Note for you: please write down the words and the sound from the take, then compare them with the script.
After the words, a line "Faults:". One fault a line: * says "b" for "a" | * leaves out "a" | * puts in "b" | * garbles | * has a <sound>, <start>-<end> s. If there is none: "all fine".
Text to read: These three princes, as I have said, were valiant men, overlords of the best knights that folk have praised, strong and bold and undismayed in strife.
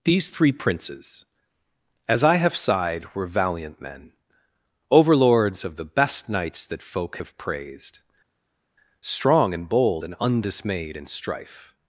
These three princes, as I have sighed, were valiant men, overlords of the best knights that folk have praised, strong and bold and undismayed in strife.
Faults:
* says "sighed" for "said"